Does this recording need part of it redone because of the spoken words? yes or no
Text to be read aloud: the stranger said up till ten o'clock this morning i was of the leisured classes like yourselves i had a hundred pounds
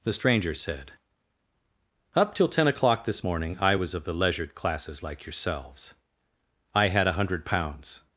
no